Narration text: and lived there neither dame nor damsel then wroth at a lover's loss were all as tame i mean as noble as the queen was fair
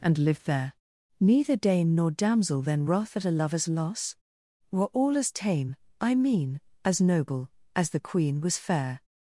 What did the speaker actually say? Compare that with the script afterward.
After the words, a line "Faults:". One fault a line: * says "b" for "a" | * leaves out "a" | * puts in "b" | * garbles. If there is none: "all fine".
and lived there neither dame nor damsel then wroth at a lover's loss were all as tame i mean as noble as the queen was fair
Faults:
all fine